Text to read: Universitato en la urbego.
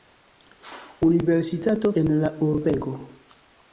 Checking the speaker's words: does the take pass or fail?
pass